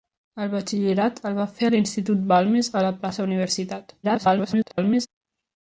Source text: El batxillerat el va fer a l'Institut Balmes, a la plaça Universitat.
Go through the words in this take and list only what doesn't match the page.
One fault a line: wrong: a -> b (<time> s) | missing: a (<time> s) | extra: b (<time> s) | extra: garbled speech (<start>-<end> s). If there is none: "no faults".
extra: garbled speech (4.0-5.1 s)